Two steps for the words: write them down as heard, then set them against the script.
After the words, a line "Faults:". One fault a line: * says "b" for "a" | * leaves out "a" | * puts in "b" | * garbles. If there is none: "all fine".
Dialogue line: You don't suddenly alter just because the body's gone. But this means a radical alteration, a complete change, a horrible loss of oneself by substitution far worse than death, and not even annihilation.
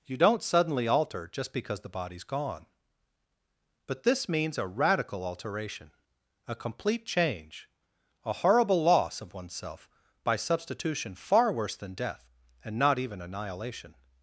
You don't suddenly alter just because the body's gone. But this means a radical alteration, a complete change, a horrible loss of oneself by substitution far worse than death, and not even annihilation.
Faults:
all fine